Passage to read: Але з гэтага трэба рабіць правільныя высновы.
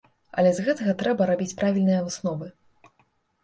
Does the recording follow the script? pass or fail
pass